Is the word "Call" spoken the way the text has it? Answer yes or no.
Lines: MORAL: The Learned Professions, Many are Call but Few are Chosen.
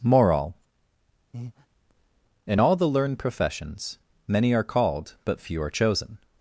no